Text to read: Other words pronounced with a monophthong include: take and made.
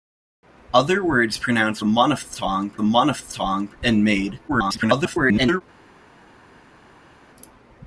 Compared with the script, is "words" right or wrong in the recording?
right